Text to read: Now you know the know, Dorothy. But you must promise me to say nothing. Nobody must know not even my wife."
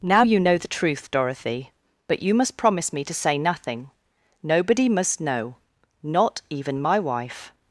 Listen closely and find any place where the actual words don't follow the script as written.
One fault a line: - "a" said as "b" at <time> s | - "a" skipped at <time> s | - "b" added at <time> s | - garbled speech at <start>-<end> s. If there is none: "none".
- "know" said as "truth" at 0.7 s